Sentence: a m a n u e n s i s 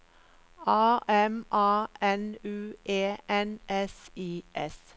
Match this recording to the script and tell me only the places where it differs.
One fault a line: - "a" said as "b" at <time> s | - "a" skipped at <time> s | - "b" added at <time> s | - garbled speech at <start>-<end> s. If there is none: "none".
none